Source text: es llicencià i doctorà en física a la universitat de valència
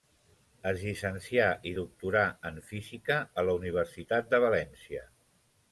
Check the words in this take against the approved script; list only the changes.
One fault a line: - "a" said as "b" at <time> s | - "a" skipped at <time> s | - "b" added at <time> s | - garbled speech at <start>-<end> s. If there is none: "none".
none